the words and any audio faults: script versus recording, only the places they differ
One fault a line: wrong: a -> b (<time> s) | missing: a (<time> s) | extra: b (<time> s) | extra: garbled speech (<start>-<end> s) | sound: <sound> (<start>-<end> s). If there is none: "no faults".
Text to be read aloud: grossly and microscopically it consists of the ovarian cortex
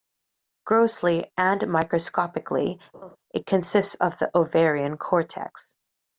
sound: laugh (2.9-3.2 s)